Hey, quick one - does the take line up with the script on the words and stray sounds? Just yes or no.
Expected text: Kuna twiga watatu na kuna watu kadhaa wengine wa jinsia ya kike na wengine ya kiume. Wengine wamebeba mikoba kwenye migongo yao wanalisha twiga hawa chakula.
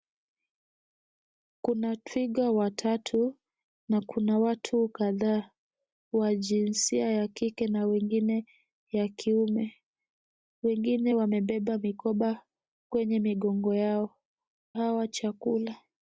no